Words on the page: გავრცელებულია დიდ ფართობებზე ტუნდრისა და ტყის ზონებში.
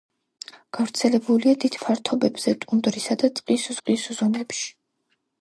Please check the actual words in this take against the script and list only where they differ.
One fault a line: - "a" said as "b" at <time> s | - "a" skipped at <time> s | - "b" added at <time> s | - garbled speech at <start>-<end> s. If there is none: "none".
- "ტყის" added at 3.8 s